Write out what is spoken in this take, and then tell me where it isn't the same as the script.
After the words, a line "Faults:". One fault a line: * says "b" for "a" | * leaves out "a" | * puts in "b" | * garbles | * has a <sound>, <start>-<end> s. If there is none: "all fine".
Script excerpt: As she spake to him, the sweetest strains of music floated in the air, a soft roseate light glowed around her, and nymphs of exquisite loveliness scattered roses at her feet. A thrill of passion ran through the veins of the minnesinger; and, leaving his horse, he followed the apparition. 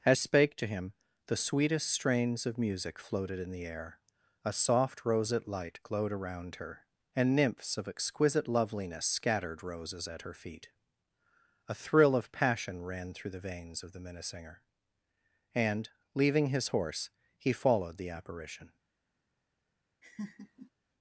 As spake to him, the sweetest strains of music floated in the air, a soft roseate light glowed around her, and nymphs of exquisite loveliness scattered roses at her feet. A thrill of passion ran through the veins of the minnesinger; and, leaving his horse, he followed the apparition.
Faults:
* leaves out "she"
* has a laugh, 20.0-20.7 s